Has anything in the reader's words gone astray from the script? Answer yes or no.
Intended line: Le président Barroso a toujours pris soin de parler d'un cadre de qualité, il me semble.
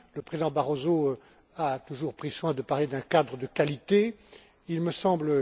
no